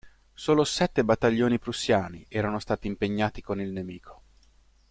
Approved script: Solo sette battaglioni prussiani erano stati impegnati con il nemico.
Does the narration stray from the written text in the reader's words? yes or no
no